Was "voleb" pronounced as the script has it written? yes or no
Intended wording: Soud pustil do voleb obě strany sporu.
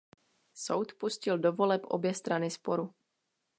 yes